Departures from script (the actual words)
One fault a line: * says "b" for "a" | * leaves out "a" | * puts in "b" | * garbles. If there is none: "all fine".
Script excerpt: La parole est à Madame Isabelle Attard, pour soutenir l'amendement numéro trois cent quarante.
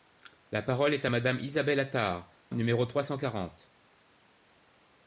* leaves out "pour soutenir l'amendement"